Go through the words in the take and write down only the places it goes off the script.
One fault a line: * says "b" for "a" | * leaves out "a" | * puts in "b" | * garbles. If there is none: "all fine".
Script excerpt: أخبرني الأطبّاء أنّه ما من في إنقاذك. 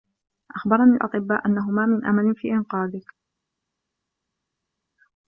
* puts in "أمل"